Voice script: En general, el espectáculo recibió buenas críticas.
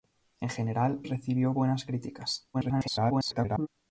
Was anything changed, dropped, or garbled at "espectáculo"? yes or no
yes